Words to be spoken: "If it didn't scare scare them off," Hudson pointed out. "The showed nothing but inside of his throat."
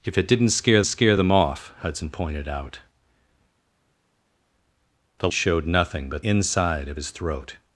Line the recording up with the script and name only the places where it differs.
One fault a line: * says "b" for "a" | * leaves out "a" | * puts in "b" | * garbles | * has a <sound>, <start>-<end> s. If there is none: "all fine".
all fine